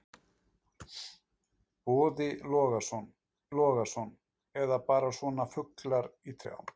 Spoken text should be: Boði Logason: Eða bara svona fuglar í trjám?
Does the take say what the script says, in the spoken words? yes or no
no